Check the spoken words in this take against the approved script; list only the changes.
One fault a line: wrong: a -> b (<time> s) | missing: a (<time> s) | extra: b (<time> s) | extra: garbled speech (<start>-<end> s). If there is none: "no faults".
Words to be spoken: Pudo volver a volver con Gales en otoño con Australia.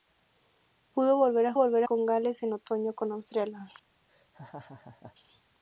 no faults